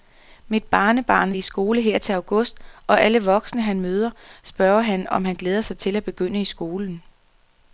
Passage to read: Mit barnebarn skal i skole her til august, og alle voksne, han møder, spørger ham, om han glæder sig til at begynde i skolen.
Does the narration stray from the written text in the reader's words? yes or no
yes